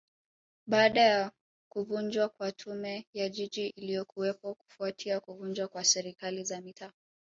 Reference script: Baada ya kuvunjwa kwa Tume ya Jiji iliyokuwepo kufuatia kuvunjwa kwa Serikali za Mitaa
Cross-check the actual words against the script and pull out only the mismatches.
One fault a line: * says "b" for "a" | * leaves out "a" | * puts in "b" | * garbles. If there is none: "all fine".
all fine